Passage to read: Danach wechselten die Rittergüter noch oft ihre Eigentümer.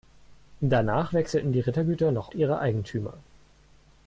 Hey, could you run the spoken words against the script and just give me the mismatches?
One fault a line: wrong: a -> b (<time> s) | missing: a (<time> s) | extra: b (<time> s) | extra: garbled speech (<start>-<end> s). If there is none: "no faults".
missing: oft (2.3 s)